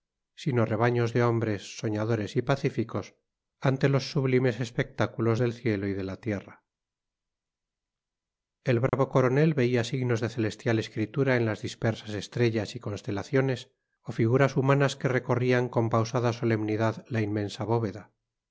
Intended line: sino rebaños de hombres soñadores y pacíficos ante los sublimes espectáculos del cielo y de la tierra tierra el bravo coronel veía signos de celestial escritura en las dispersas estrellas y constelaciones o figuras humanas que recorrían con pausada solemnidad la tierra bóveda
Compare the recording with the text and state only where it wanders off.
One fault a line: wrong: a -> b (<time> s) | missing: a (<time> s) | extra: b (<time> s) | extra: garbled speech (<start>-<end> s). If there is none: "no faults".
missing: tierra (6.6 s)
wrong: tierra -> inmensa (17.2 s)